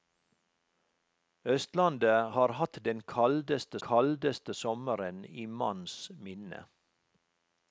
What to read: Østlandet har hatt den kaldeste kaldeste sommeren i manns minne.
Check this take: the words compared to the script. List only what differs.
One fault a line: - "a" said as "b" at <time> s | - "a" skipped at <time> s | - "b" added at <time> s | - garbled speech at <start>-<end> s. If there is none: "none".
none